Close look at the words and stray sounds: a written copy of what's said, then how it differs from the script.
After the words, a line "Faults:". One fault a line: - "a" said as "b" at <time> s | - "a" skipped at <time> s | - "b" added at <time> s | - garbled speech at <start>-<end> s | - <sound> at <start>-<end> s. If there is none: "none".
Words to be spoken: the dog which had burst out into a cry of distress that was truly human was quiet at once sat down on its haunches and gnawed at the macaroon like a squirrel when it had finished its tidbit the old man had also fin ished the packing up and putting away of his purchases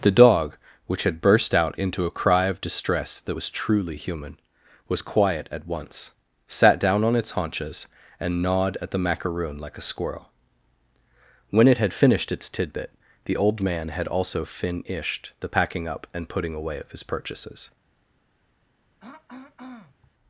the dog which had burst out into a cry of distress that was truly human was quiet at once sat down on its haunches and gnawed at the macaroon like a squirrel when it had finished its tidbit the old man had also fin ished the packing up and putting away of his purchases
Faults:
- throat clearing at 19.0-20.1 s